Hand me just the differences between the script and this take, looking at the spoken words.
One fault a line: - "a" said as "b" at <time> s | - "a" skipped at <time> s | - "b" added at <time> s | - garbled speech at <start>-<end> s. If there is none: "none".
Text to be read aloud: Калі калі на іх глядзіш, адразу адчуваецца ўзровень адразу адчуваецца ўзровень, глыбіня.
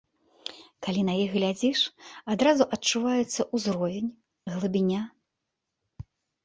- "калі" skipped at 1.0 s
- "адразу адчуваецца ўзровень" skipped at 4.1 s